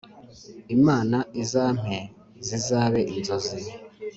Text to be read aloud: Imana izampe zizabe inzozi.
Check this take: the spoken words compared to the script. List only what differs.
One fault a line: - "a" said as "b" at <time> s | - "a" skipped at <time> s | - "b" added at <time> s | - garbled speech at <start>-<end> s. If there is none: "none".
none